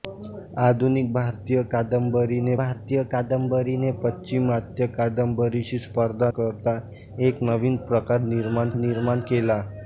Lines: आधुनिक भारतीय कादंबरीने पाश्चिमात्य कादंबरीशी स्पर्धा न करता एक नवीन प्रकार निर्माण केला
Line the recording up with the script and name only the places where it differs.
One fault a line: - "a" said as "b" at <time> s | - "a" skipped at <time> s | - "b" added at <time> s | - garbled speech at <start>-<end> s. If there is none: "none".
- "भारतीय कादंबरीने" added at 2.6 s
- "न" skipped at 6.3 s
- "निर्माण" added at 8.8 s